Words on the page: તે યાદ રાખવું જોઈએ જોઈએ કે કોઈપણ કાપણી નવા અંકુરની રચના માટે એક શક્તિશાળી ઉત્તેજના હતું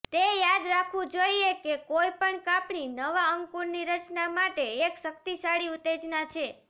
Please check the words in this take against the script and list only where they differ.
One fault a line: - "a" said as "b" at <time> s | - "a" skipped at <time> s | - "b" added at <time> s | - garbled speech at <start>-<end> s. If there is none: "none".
- "જોઈએ" skipped at 1.5 s
- "હતું" said as "છે" at 6.3 s